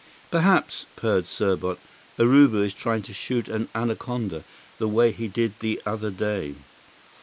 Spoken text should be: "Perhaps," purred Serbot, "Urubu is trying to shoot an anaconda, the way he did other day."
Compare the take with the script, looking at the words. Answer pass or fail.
fail